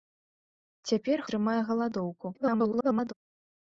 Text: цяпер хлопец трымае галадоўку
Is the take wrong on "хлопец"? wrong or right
wrong